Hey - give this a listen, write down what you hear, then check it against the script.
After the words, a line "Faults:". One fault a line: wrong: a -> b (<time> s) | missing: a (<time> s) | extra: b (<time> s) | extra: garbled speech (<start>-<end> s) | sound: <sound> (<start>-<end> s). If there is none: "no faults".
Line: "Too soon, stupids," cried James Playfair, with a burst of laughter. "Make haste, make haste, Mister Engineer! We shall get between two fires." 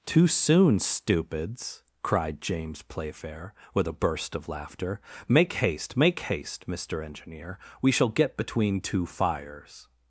"Too soon, stupids," cried James Playfair, with a burst of laughter. "Make haste, make haste, Mister Engineer! We shall get between two fires."
Faults:
no faults